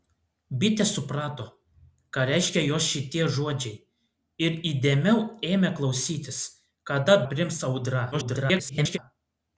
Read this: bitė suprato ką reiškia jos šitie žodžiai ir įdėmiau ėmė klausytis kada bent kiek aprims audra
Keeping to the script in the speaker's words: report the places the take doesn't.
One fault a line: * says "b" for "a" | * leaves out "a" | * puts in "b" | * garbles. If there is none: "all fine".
* leaves out "bent kiek"
* garbles